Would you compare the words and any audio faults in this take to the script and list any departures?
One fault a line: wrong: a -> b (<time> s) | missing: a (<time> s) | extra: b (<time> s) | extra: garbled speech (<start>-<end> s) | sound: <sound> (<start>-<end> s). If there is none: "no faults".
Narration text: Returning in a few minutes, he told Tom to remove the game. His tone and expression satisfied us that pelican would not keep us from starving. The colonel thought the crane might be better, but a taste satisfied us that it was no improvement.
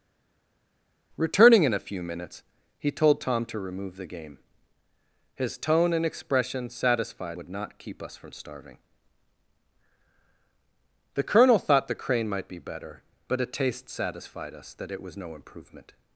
missing: us that pelican (7.4 s)